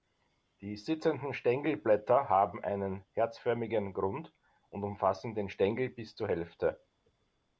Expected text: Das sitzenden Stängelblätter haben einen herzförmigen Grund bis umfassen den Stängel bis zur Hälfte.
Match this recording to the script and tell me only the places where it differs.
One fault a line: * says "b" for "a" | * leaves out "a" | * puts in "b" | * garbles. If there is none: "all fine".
* says "Die" for "Das"
* says "und" for "bis"